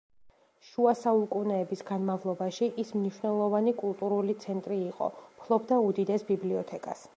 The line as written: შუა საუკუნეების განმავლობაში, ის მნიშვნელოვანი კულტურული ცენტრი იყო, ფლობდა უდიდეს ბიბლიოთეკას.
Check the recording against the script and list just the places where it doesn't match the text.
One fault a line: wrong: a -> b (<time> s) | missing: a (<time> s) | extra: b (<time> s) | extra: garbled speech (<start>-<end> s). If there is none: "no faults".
no faults